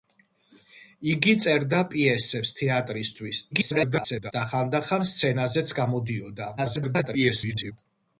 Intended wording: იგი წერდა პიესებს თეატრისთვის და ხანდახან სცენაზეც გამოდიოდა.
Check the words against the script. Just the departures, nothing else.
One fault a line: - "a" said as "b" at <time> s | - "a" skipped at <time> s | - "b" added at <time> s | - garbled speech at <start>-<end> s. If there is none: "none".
- garbled speech at 3.5-4.3 s
- garbled speech at 6.6-7.7 s